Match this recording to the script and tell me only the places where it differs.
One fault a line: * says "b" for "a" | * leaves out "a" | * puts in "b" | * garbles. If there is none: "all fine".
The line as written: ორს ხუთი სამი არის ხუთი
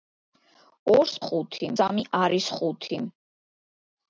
all fine